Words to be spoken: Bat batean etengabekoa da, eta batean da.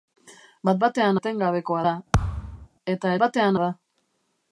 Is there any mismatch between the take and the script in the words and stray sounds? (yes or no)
yes